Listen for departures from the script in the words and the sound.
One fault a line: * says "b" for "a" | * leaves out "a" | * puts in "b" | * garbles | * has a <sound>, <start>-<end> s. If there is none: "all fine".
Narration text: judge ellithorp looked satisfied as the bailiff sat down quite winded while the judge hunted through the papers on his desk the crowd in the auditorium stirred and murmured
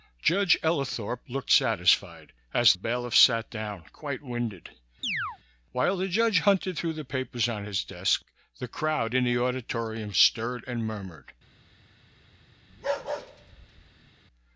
* leaves out "the"
* has a chirp, 5.0-5.4 s
* has a bark, 12.7-14.1 s